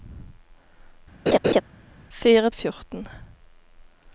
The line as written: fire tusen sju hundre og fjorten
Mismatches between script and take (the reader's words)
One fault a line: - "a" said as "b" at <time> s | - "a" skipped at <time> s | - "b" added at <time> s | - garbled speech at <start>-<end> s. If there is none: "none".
- "tusen sju hundre" skipped at 2.5 s